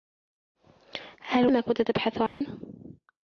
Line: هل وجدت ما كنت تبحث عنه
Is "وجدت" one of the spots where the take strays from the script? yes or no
yes